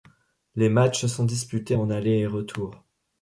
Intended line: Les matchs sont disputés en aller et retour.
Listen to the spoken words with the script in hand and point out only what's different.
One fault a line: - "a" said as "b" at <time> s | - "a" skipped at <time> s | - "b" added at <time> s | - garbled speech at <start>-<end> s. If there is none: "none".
none